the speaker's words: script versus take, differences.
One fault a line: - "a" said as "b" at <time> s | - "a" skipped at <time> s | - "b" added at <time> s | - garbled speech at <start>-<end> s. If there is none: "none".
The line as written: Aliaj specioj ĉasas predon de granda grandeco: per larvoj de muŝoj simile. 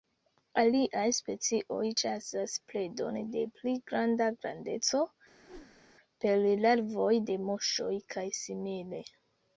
- "pli" added at 3.6 s
- "kaj" added at 8.2 s